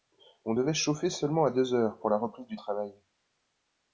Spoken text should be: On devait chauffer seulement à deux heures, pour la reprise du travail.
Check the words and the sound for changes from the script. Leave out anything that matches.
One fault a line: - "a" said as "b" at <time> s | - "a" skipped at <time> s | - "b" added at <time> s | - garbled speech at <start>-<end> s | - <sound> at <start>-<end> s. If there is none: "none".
none